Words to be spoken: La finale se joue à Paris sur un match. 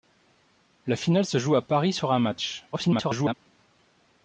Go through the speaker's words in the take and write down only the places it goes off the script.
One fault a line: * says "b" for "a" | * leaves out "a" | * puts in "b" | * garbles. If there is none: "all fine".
* garbles